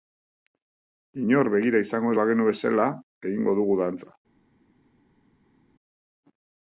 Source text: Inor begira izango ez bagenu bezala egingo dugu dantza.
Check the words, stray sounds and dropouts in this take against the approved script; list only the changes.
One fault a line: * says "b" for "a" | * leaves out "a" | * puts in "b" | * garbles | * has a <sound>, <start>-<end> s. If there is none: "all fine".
all fine